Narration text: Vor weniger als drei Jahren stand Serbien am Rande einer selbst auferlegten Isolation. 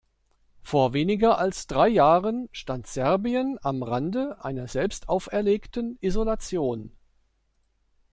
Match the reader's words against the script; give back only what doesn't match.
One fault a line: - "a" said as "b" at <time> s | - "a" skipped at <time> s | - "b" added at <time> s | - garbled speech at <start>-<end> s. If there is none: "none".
none